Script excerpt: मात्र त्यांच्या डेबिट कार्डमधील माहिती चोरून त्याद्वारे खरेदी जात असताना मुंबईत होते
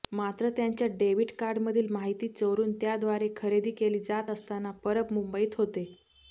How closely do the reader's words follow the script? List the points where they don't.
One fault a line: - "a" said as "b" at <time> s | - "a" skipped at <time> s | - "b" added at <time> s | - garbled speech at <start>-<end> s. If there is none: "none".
- "केली" added at 3.7 s
- "परब" added at 4.8 s